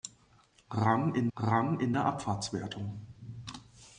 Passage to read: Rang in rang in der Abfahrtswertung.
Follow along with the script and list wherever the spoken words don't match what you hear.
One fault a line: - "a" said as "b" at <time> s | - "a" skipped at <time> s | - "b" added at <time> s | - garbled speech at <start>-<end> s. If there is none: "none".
none